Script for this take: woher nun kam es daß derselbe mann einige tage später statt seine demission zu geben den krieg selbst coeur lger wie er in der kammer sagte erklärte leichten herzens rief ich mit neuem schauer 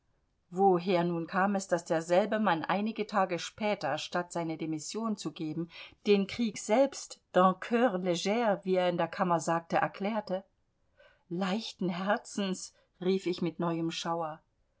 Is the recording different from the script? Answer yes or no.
yes